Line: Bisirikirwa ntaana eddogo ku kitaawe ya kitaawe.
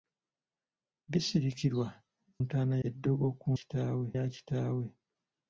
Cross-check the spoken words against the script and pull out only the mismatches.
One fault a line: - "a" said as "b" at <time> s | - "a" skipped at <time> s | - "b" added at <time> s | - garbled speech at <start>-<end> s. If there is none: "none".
none